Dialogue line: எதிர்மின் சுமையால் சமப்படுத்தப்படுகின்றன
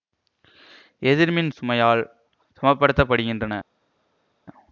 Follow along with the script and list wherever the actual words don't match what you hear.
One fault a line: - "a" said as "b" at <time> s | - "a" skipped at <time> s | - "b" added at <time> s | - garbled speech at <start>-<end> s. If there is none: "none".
none